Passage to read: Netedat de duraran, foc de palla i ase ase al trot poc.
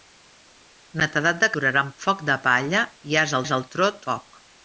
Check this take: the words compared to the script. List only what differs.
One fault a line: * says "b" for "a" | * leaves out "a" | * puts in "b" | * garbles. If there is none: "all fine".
all fine